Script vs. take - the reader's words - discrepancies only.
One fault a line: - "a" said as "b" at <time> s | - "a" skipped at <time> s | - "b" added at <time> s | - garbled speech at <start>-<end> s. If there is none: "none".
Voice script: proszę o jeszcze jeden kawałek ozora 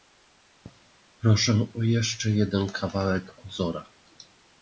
none